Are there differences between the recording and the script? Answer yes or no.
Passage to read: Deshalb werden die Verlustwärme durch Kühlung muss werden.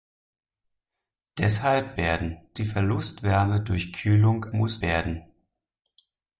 no